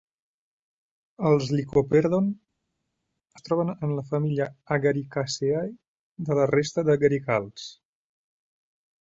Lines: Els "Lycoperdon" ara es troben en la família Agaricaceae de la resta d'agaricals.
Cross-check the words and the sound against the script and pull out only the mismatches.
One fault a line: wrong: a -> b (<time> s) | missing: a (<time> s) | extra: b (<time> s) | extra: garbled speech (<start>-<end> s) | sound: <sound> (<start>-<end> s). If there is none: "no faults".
missing: ara (2.3 s)